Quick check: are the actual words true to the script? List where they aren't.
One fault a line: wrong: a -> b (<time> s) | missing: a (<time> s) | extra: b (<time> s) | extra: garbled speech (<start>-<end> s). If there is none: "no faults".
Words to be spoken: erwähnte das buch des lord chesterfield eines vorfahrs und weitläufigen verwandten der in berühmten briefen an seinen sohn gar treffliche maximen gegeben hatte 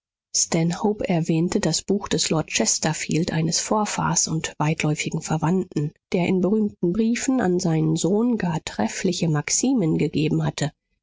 no faults